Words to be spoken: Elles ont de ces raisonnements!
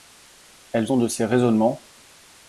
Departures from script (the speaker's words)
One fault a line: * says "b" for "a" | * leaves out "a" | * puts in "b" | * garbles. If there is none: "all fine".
all fine